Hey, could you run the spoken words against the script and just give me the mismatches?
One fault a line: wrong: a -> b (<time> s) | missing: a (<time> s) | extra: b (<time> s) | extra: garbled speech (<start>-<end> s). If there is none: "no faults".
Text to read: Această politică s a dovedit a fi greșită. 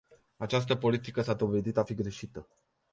no faults